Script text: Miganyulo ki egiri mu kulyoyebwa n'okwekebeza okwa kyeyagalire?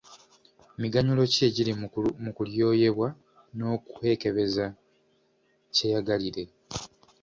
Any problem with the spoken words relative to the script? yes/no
yes